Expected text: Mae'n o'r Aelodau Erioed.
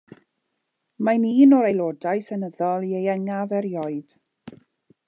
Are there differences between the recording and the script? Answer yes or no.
yes